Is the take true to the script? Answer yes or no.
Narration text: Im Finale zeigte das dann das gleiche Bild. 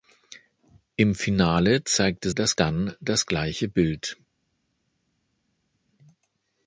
yes